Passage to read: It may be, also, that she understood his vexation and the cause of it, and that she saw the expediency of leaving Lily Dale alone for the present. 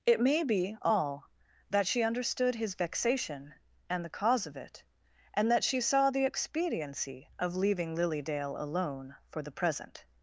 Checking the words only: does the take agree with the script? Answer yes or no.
no